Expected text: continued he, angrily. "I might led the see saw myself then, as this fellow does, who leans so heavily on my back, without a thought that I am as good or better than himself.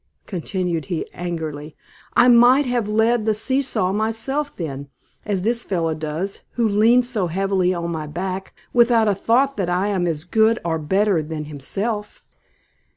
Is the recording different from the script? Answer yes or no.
yes